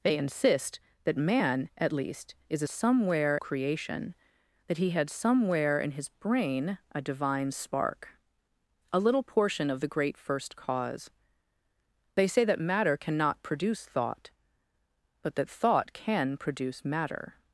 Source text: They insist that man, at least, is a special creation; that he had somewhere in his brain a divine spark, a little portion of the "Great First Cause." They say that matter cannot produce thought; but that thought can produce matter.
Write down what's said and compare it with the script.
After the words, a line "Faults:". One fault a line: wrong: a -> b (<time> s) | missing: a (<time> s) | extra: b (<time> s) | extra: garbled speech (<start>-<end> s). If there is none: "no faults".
They insist that man, at least, is a somewhere creation; that he had somewhere in his brain a divine spark, a little portion of the "Great First Cause." They say that matter cannot produce thought; but that thought can produce matter.
Faults:
wrong: special -> somewhere (2.7 s)